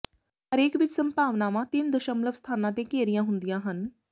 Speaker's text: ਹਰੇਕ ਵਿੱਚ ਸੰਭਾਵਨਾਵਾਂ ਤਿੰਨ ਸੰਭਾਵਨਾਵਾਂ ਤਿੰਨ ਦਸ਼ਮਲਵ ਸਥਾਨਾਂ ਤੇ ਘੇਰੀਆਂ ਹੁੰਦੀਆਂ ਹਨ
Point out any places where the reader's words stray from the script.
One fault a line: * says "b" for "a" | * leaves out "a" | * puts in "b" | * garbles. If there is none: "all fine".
* leaves out "ਸੰਭਾਵਨਾਵਾਂ ਤਿੰਨ"